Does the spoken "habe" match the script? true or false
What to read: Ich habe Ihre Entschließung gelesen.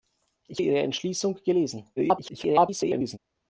false